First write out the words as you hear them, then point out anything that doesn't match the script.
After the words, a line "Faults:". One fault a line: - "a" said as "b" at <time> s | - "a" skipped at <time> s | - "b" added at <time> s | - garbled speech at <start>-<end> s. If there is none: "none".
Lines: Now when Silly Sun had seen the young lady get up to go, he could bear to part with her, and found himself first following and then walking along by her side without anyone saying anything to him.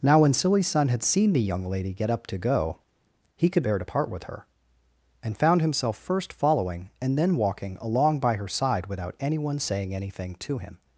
Now when Silly Sun had seen the young lady get up to go, he could bear to part with her, and found himself first following and then walking along by her side without anyone saying anything to him.
Faults:
none